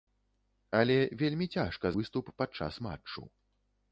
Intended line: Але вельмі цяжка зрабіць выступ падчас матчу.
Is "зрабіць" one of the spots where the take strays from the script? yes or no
yes